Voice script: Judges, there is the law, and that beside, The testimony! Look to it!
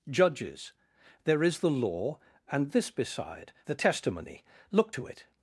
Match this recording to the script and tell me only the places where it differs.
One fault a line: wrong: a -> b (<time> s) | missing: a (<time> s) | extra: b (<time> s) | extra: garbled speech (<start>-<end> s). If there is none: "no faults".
wrong: that -> this (2.7 s)